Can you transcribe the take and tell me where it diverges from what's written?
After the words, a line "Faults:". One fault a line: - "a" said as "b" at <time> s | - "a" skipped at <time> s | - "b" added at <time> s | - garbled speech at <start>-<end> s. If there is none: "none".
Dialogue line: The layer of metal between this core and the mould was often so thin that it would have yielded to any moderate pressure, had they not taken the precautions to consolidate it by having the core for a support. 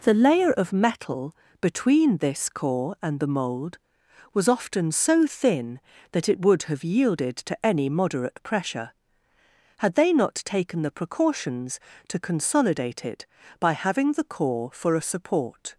The layer of metal between this core and the mould was often so thin that it would have yielded to any moderate pressure, had they not taken the precautions to consolidate it by having the core for a support.
Faults:
none